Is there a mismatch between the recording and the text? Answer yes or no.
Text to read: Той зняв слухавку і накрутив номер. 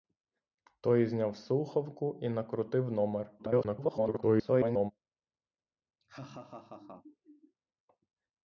yes